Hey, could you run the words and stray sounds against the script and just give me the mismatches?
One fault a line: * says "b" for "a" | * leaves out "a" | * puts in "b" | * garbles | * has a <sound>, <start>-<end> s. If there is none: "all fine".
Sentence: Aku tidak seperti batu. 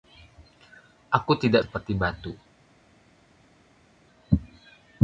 all fine